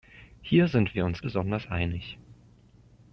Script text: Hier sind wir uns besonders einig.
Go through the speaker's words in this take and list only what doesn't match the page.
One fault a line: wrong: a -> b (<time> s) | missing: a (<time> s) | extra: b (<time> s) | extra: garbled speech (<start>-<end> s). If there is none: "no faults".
no faults